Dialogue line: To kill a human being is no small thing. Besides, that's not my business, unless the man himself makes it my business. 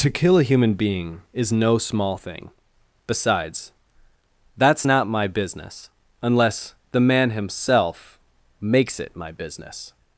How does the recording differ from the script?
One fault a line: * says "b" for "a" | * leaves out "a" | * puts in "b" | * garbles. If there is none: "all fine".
all fine